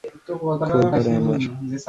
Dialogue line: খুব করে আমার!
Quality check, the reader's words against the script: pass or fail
pass